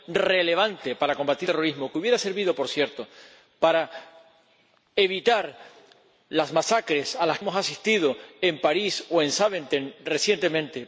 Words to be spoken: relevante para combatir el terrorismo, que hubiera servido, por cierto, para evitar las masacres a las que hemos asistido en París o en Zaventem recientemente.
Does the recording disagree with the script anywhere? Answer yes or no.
yes